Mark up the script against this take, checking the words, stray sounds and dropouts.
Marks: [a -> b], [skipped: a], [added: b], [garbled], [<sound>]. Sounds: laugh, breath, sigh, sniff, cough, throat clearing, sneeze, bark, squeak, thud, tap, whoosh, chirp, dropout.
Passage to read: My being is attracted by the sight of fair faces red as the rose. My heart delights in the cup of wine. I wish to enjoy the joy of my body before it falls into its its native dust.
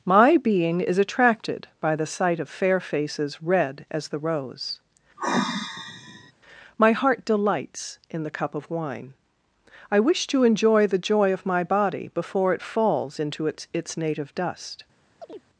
My being is attracted by the sight of fair faces red as the rose. [sigh] My heart delights in the cup of wine. I wish to enjoy the joy of my body before it falls into its its native dust. [chirp]